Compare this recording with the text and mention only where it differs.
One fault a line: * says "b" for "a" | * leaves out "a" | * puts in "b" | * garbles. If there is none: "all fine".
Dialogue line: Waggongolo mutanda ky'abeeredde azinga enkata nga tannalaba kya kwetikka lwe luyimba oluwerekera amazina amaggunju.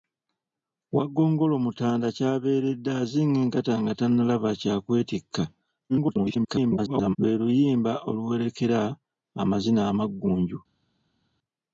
* garbles